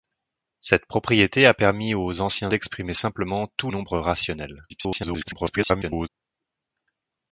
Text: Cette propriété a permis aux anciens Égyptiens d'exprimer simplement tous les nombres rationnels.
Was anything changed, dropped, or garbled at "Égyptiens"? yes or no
yes